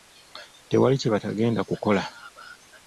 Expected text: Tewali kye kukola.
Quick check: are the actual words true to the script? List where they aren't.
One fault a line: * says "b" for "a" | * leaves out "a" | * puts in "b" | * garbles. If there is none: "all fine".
* puts in "batagenda"